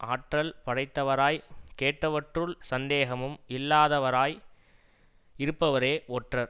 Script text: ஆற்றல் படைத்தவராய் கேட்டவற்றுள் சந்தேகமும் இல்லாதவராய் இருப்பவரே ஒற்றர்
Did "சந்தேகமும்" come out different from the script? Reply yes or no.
no